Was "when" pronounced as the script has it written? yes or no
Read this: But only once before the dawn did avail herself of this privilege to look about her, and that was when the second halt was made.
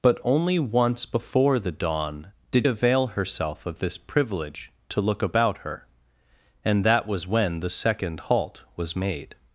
yes